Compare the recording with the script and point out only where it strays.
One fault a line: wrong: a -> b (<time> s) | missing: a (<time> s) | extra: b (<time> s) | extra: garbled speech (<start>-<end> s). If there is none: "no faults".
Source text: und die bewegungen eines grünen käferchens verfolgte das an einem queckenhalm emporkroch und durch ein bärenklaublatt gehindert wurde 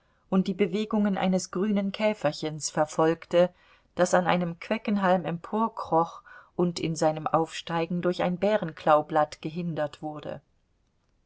extra: in seinem aufsteigen (6.8 s)